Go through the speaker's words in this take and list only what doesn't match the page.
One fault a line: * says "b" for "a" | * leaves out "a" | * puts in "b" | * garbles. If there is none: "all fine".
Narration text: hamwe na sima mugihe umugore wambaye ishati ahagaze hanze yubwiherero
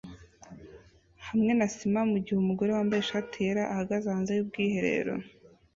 * puts in "yera"